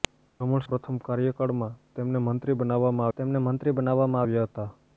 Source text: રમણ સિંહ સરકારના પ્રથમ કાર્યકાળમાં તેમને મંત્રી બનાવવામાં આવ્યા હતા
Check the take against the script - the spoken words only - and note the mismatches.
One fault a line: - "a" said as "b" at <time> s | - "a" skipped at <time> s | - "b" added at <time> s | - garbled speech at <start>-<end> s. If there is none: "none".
- "સિંહ સરકારના પ્રથમ કાર્યકાળમાં" said as "પ્રથમ કાર્યકાળમાં તેમને મંત્રી બનાવવામાં" at 0.6 s